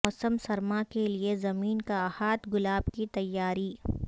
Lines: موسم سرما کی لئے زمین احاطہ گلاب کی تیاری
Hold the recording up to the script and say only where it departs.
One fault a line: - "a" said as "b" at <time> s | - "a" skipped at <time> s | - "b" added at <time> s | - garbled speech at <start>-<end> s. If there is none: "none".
- "کی" said as "کے" at 0.9 s
- "کا" added at 1.8 s